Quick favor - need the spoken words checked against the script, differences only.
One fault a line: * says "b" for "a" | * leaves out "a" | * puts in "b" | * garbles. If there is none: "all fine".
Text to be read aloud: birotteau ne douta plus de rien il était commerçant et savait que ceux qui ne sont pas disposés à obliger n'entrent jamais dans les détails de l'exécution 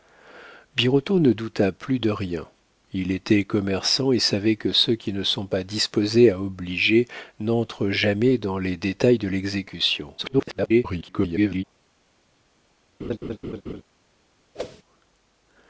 * garbles